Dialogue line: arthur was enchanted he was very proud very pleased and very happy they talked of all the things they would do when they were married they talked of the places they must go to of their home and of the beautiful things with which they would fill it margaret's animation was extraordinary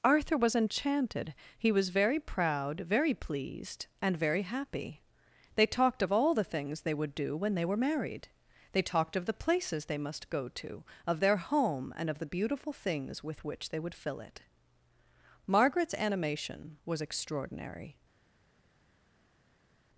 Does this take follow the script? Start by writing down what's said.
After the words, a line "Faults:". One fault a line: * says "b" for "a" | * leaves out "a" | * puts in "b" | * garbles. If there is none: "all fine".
arthur was enchanted he was very proud very pleased and very happy they talked of all the things they would do when they were married they talked of the places they must go to of their home and of the beautiful things with which they would fill it margaret's animation was extraordinary
Faults:
all fine